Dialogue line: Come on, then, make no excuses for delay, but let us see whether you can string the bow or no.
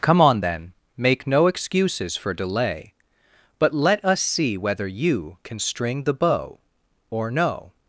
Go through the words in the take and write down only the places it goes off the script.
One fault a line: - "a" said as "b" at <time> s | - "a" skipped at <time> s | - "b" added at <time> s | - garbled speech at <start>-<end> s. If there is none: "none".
none